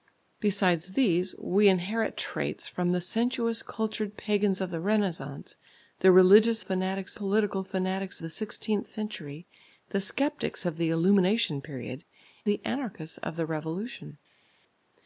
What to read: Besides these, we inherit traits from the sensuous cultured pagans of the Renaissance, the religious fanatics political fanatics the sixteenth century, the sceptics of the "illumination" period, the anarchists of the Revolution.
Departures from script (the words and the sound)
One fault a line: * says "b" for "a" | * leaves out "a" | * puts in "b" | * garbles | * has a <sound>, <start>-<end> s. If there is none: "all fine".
all fine